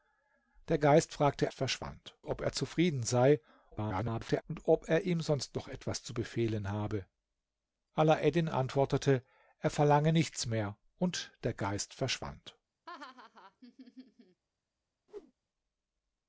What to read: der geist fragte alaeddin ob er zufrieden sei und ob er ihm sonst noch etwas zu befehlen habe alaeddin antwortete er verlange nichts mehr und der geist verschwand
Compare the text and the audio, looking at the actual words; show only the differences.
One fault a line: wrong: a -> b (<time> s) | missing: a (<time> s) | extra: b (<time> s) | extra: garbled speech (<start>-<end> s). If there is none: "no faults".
wrong: alaeddin -> verschwand (1.5 s)
extra: garbled speech (3.7-4.4 s)